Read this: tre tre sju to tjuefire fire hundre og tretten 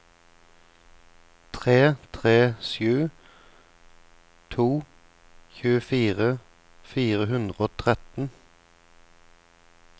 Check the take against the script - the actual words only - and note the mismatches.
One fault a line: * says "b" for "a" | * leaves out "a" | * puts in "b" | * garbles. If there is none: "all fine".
all fine